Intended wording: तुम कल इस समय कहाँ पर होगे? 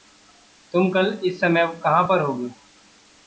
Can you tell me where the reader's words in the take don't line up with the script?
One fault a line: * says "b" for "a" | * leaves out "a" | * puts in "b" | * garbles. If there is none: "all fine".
all fine